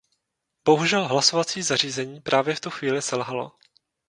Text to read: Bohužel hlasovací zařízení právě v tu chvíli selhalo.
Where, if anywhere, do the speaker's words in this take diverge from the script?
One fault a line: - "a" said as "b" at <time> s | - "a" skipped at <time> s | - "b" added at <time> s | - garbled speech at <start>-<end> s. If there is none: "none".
none